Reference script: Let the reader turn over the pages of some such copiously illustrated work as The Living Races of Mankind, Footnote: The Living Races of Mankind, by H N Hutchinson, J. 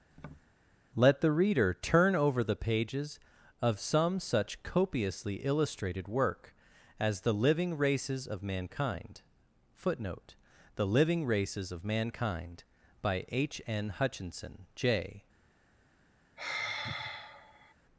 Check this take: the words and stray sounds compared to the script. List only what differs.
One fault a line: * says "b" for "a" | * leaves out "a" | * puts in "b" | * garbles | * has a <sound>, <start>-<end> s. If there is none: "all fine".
* has a tap, 0.1-0.5 s
* has a sigh, 16.4-17.7 s